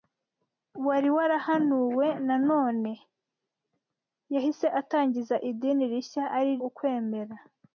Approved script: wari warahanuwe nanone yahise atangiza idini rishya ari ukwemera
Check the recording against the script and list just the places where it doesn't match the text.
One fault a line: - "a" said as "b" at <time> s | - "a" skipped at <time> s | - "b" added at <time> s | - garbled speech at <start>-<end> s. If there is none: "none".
none